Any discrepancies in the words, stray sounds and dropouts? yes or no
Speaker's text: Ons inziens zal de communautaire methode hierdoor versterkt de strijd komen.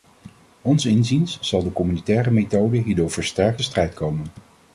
no